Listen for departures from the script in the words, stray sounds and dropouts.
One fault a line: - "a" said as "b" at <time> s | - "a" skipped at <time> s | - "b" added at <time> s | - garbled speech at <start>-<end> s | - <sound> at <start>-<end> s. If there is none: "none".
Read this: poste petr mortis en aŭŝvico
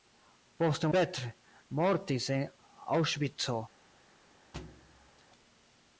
- thud at 4.5-5.2 s